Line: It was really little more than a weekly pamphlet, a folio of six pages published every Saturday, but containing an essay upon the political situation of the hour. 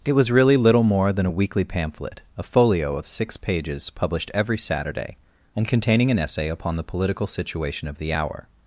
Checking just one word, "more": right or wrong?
right